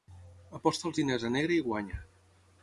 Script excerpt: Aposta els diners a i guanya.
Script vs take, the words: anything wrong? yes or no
yes